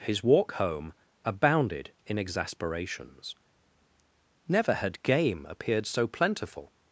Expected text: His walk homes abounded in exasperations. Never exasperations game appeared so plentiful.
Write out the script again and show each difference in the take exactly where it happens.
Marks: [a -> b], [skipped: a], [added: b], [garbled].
His walk [homes -> home] abounded in exasperations. Never [exasperations -> had] game appeared so plentiful.